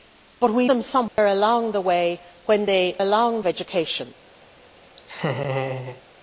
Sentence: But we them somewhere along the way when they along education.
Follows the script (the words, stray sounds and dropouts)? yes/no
no